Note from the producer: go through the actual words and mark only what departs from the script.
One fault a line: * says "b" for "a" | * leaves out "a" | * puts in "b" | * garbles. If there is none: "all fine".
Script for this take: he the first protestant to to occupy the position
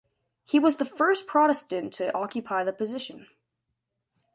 * puts in "was"
* leaves out "to"